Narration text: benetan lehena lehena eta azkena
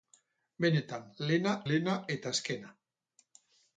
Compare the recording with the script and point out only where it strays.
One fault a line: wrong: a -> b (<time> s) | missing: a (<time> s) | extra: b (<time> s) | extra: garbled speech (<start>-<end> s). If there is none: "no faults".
no faults